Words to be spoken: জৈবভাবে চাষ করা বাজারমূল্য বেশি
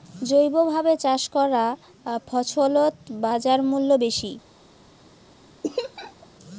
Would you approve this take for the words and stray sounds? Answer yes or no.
no